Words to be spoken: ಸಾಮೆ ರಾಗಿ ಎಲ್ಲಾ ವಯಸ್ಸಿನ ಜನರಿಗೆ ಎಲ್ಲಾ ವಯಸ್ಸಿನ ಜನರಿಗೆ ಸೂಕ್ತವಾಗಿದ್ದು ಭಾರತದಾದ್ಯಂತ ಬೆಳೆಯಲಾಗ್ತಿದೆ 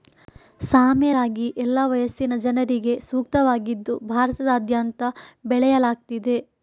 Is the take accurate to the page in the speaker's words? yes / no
no